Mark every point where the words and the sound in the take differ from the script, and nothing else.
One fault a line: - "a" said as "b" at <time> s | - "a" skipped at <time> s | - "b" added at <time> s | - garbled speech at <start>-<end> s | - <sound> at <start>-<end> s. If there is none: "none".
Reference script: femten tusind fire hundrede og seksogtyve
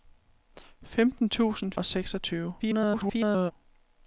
- "fire hundrede" skipped at 1.7 s
- garbled speech at 2.6-3.5 s